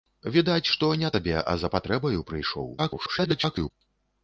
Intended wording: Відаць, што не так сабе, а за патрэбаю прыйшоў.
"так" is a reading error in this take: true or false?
true